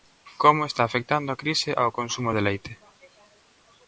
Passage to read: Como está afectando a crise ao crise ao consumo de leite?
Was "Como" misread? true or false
false